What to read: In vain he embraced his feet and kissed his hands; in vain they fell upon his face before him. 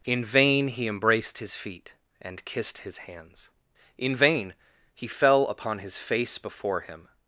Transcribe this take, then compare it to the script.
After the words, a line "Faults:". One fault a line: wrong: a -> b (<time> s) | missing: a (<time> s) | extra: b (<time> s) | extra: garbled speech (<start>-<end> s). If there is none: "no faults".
In vain he embraced his feet and kissed his hands; in vain he fell upon his face before him.
Faults:
wrong: they -> he (4.9 s)